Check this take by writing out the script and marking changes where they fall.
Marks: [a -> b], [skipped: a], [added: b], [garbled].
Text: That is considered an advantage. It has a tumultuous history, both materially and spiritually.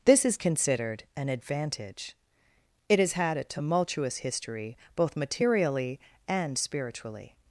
[That -> This] is considered an advantage. It has [added: had] a tumultuous history, both materially and spiritually.